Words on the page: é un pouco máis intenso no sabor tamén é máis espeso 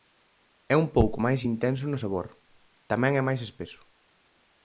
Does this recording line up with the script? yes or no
yes